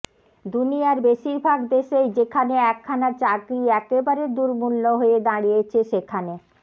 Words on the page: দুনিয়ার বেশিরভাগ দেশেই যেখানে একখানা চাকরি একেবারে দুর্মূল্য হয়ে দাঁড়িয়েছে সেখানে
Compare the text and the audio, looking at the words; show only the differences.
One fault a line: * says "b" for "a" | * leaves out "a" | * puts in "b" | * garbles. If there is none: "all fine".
all fine